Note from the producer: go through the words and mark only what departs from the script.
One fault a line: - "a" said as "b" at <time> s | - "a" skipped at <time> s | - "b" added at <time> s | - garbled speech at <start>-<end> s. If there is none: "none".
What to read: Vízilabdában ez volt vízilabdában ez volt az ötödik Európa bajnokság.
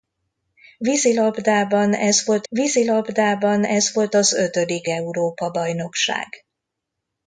none